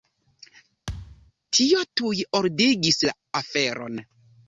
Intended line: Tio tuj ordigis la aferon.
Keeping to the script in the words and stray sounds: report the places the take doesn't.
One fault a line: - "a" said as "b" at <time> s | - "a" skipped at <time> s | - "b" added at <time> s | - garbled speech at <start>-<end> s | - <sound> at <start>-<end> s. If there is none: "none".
- thud at 0.9-1.3 s